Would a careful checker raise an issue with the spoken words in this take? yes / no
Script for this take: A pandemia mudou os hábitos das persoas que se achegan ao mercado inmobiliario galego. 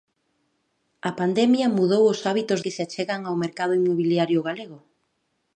yes